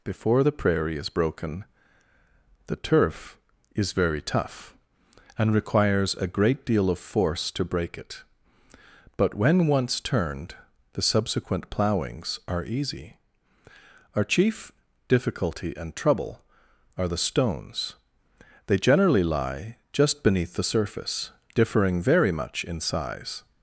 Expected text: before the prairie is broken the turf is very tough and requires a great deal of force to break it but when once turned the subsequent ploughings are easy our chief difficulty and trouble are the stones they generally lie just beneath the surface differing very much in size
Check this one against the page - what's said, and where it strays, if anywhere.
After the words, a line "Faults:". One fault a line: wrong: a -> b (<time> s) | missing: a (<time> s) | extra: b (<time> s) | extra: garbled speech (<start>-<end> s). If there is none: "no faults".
before the prairie is broken the turf is very tough and requires a great deal of force to break it but when once turned the subsequent ploughings are easy our chief difficulty and trouble are the stones they generally lie just beneath the surface differing very much in size
Faults:
no faults